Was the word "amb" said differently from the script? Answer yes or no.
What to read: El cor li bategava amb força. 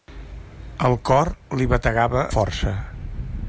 yes